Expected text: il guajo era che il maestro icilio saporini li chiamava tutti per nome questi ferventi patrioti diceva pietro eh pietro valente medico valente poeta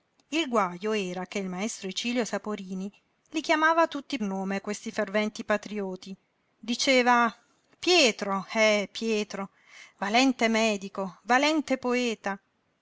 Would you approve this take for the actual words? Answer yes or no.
no